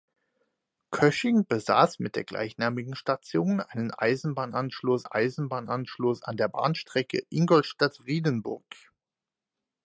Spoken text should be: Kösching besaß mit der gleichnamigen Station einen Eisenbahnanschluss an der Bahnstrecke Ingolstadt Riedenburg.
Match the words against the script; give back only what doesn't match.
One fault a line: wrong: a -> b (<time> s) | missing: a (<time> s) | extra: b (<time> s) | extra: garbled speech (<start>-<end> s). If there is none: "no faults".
extra: Eisenbahnanschluss (5.0 s)